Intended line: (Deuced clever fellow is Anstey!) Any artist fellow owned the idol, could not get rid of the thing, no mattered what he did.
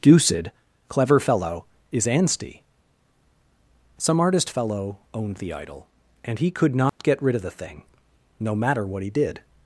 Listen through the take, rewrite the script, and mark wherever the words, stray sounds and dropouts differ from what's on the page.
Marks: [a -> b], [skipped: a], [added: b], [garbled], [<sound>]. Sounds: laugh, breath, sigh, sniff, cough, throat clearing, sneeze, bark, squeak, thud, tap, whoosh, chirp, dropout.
(Deuced clever fellow is Anstey!) [Any -> Some] artist fellow owned the idol, [added: and he] could not [dropout] get rid of the thing, no [mattered -> matter] what he did.